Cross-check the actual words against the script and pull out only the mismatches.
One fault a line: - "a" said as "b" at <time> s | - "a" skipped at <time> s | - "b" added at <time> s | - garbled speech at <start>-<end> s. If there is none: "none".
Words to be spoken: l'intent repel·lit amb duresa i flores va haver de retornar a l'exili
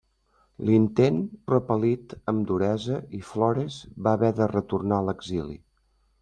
none